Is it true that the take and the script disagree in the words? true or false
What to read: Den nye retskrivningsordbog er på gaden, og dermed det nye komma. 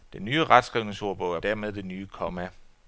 true